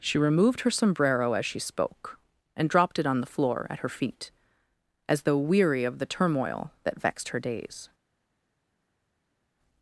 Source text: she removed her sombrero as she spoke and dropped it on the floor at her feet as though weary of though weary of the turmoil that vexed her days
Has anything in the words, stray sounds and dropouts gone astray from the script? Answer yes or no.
yes